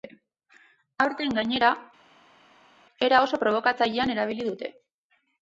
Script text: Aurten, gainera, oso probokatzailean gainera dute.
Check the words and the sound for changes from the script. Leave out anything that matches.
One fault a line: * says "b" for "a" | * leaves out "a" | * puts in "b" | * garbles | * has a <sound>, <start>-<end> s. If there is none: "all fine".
* puts in "era"
* says "erabili" for "gainera"